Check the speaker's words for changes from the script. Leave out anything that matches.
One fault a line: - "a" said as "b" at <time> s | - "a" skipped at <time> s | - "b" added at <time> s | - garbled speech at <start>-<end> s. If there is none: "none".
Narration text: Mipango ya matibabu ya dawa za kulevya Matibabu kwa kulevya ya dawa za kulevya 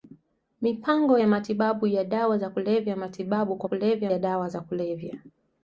none